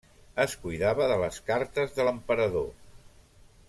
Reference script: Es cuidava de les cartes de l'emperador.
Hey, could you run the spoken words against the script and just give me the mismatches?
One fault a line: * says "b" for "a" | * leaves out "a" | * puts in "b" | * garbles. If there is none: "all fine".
all fine